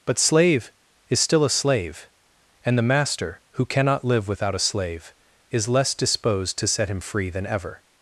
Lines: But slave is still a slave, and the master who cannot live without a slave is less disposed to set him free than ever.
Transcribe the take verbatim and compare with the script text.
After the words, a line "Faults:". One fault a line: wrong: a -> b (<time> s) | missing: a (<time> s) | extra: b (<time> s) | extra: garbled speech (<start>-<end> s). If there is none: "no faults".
But slave is still a slave, and the master who cannot live without a slave is less disposed to set him free than ever.
Faults:
no faults